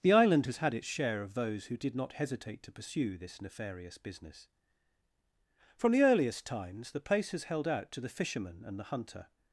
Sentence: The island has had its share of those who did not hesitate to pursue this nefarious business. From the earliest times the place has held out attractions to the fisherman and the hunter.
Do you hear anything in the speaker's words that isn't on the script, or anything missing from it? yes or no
yes